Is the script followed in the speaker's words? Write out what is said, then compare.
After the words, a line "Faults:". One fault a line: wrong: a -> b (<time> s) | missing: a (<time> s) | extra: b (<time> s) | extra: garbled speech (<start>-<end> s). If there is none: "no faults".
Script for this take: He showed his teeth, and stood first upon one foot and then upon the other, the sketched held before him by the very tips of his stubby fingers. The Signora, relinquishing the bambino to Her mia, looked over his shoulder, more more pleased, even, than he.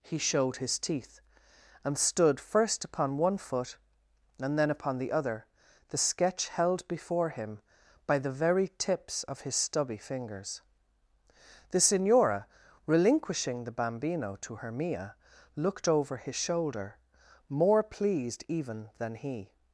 He showed his teeth, and stood first upon one foot and then upon the other, the sketch held before him by the very tips of his stubby fingers. The Signora, relinquishing the bambino to Her mia, looked over his shoulder, more pleased, even, than he.
Faults:
wrong: sketched -> sketch (6.0 s)
missing: more (17.8 s)